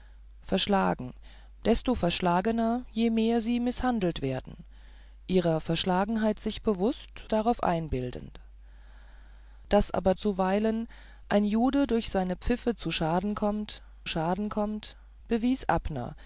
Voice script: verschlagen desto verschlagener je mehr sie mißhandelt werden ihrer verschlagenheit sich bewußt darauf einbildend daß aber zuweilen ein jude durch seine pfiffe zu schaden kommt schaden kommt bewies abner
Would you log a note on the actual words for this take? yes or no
no